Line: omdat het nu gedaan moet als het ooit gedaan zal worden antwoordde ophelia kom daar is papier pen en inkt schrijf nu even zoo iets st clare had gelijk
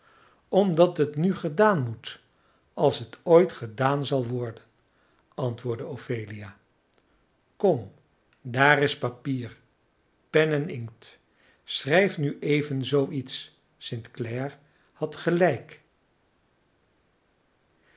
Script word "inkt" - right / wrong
right